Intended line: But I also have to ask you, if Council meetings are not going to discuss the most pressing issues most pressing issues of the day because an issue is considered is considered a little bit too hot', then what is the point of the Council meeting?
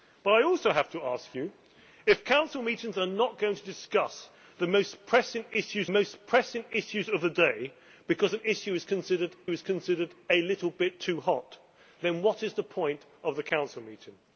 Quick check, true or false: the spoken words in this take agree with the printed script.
true